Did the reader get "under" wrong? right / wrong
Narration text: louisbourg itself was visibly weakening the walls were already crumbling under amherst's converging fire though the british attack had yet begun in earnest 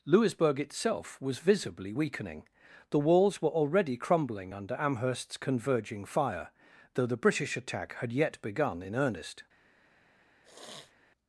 right